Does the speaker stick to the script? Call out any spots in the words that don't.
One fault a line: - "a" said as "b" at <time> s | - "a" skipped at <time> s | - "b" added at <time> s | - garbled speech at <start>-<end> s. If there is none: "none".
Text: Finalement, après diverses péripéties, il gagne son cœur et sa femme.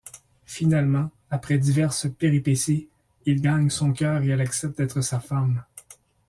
- "elle accepte d'être" added at 4.3 s